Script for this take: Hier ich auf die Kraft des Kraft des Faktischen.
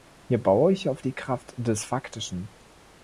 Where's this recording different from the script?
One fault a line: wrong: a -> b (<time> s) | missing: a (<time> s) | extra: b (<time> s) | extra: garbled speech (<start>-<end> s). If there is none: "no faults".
extra: baue (0.4 s)
missing: Kraft des (1.8 s)